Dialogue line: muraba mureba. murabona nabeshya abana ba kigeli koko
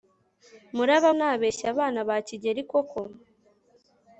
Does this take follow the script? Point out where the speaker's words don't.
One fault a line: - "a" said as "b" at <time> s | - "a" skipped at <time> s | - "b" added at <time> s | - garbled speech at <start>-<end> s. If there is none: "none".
- "mureba murabona" skipped at 1.1 s